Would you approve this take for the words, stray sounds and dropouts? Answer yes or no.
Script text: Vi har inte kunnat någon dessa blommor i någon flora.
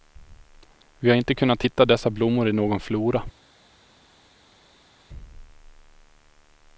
no